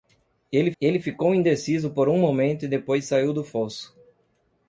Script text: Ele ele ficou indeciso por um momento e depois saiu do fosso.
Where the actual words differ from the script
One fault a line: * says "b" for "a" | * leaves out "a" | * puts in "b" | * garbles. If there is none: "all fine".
all fine